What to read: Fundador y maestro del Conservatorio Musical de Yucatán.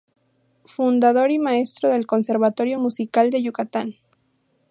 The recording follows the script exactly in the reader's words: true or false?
true